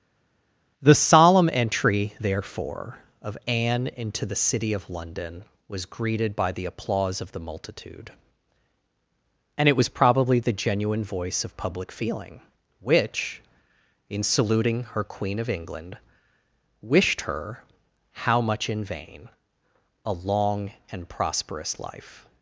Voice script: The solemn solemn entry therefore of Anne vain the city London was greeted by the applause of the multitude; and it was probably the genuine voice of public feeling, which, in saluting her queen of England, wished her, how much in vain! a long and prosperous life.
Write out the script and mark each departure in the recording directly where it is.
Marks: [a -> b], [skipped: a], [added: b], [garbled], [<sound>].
The solemn [skipped: solemn] entry therefore of Anne [vain -> into] the city [added: of] London was greeted by the applause of the multitude; and it was probably the genuine voice of public feeling, which, in saluting her queen of England, wished her, how much in vain! a long and prosperous life.